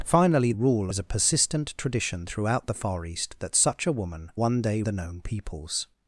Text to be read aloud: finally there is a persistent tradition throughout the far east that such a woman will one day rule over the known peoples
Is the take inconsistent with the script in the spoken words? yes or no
yes